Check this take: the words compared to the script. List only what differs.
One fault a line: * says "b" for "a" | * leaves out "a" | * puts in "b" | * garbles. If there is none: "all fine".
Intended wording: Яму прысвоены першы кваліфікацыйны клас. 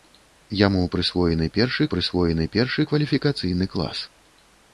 * puts in "прысвоены першы"